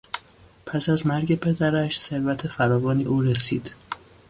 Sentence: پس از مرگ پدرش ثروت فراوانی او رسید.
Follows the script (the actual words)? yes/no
yes